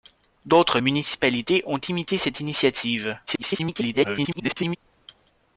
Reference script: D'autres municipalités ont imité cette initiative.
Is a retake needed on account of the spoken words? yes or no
yes